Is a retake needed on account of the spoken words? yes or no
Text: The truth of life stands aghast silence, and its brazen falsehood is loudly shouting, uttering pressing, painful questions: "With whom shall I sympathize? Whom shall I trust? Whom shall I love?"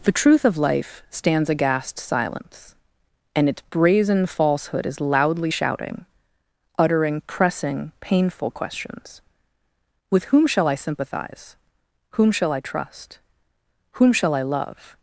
no